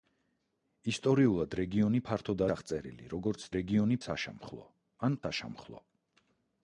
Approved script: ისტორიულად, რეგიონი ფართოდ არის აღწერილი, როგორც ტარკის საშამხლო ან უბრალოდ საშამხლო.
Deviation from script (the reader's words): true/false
true